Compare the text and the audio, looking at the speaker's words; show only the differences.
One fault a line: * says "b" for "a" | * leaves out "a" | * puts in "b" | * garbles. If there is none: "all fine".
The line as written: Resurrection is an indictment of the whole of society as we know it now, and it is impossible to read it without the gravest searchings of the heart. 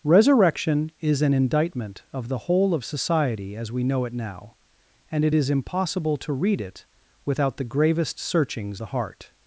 * leaves out "of"